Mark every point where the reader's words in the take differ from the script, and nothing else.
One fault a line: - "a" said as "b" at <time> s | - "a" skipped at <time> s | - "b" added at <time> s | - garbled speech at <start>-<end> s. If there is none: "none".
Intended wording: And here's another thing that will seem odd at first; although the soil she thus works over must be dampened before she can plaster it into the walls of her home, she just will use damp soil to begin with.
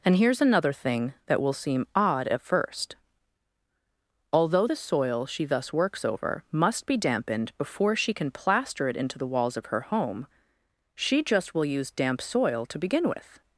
none